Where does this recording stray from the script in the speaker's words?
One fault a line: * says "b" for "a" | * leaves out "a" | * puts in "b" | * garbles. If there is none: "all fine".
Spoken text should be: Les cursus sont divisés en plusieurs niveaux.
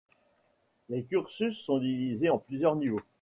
all fine